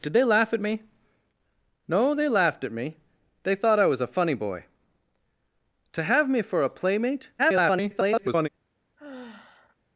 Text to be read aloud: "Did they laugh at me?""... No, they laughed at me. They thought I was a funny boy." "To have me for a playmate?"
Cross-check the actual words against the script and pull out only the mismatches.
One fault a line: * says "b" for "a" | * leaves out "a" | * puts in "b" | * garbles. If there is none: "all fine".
* garbles